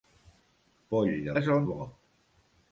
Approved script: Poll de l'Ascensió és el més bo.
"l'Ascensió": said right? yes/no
no